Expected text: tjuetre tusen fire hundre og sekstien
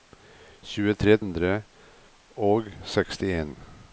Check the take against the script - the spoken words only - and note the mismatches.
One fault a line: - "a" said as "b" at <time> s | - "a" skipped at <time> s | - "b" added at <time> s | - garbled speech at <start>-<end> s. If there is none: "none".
- "tusen fire" skipped at 1.2 s